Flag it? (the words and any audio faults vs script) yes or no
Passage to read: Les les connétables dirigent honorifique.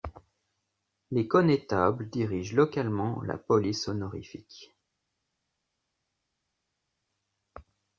yes